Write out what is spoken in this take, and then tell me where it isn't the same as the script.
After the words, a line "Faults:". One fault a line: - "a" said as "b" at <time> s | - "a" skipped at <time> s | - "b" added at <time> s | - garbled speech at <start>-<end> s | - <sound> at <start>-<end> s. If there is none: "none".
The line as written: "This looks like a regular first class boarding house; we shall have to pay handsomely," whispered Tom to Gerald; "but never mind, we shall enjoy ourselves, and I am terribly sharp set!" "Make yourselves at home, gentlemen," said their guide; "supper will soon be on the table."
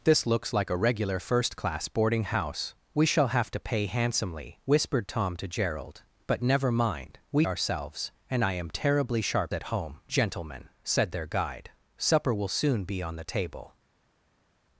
"This looks like a regular first class boarding house; we shall have to pay handsomely," whispered Tom to Gerald; "but never mind, we ourselves, and I am terribly sharp at home, gentlemen," said their guide; "supper will soon be on the table."
Faults:
- "shall enjoy" skipped at 7.5 s
- "set Make yourselves" skipped at 9.5 s